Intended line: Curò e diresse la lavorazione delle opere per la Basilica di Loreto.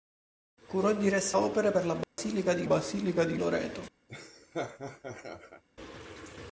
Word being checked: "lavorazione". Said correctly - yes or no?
no